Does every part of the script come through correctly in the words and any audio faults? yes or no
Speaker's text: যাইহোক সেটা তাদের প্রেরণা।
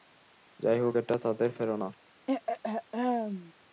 no